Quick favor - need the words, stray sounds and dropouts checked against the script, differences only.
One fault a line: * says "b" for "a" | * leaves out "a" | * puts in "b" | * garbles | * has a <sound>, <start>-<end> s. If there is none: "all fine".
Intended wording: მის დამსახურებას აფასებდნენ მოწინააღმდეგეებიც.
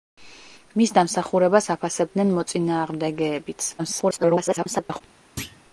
* garbles
* has a thud, 5.4-5.6 s